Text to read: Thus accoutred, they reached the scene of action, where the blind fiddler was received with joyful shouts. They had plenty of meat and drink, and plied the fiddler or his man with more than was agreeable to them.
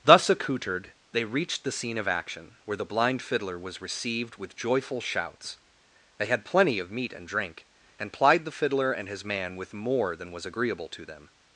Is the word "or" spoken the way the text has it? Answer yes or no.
no